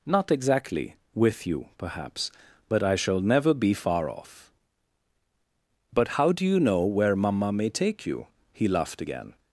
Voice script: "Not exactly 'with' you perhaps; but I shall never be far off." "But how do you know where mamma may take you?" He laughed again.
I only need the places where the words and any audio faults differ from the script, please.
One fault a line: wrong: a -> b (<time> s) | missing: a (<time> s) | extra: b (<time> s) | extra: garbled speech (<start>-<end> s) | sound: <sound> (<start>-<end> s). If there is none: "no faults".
no faults